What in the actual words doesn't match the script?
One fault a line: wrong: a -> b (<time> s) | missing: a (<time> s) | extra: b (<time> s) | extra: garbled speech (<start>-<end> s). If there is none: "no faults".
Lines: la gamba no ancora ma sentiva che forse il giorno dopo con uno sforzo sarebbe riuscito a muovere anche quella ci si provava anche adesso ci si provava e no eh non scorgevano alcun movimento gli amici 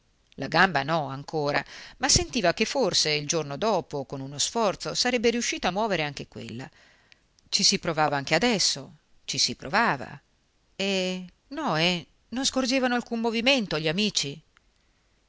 no faults